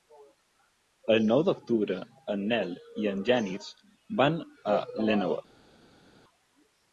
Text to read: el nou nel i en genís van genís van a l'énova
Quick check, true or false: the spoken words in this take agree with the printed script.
false